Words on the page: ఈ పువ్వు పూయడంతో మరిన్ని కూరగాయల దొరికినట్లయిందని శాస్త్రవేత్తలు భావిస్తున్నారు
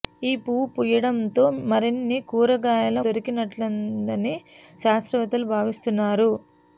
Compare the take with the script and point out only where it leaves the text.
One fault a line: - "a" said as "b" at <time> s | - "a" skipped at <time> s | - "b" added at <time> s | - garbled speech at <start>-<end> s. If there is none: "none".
none